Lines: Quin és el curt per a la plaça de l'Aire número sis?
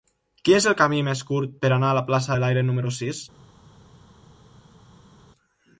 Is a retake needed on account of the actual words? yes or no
yes